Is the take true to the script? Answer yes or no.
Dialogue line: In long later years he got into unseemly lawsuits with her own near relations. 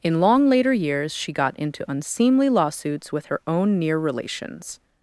no